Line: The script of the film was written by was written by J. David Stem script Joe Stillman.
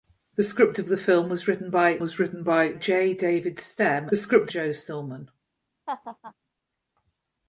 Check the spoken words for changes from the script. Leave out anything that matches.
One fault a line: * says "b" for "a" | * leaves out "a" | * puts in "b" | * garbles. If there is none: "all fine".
all fine